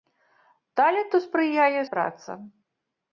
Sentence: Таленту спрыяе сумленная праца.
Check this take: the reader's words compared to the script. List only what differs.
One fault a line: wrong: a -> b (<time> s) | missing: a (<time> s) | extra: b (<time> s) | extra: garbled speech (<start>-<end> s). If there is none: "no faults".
missing: сумленная (1.8 s)